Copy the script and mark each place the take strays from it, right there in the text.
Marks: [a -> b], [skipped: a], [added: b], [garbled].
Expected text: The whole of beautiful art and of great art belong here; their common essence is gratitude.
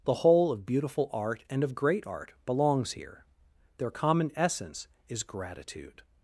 The whole of beautiful art and of great art [belong -> belongs] here; their common essence is gratitude.